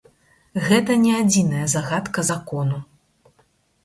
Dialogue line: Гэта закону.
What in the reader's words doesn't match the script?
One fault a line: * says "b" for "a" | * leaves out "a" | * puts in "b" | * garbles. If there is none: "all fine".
* puts in "не адзіная загадка"